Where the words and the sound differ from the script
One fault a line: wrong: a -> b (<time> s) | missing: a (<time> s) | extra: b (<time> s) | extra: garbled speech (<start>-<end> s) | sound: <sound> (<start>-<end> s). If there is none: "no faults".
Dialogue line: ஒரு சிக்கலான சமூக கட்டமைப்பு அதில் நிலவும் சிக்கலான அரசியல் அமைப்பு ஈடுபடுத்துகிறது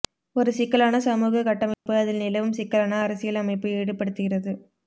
sound: dropout (1.7-1.9 s)